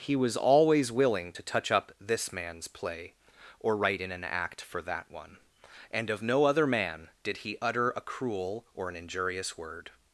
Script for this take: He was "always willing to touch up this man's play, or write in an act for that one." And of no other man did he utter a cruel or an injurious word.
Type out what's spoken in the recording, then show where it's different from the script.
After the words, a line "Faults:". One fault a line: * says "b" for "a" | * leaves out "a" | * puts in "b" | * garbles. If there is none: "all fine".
He was "always willing to touch up this man's play, or write in an act for that one." And of no other man did he utter a cruel or an injurious word.
Faults:
all fine